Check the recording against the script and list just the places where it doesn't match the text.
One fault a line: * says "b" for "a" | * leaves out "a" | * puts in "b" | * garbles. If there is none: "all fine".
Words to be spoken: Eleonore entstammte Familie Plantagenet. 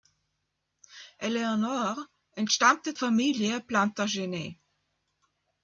all fine